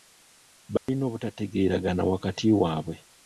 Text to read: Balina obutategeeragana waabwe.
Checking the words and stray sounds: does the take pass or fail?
fail